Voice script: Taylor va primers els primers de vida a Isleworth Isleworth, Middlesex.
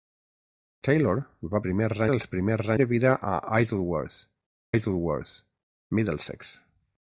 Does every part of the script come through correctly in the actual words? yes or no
yes